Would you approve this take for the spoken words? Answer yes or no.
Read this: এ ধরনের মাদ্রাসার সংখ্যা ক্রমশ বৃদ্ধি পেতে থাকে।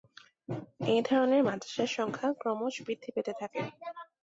yes